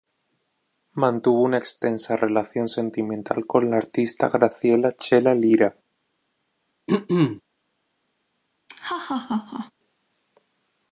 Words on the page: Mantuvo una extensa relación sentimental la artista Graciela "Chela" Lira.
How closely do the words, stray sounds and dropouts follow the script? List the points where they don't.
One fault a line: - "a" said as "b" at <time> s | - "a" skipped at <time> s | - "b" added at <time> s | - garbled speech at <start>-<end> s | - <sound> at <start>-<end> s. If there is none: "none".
- "con" added at 3.4 s
- throat clearing at 6.9-7.4 s
- laugh at 8.7-9.7 s